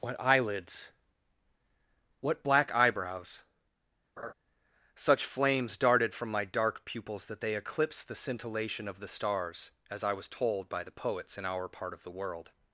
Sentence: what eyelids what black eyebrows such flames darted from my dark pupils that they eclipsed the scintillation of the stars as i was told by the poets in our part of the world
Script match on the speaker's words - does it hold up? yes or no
yes